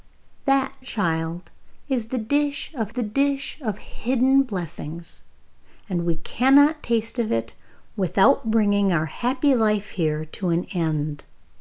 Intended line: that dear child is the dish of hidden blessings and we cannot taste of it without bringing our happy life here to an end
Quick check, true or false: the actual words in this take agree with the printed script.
false